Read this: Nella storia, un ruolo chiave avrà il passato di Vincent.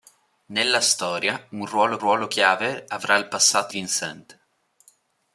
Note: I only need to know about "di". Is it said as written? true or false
false